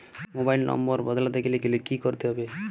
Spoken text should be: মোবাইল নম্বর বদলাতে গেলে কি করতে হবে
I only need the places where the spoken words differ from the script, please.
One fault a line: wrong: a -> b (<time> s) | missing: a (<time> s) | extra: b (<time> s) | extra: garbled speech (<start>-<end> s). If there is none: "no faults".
extra: গেলে (1.6 s)